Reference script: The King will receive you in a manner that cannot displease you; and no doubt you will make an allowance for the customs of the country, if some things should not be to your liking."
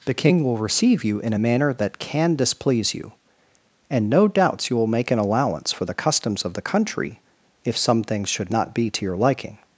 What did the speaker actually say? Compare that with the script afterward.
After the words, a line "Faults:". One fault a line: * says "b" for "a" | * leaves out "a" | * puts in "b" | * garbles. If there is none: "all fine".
The King will receive you in a manner that can displease you; and no doubts you will make an allowance for the customs of the country, if some things should not be to your liking."
Faults:
* says "can" for "cannot"
* says "doubts" for "doubt"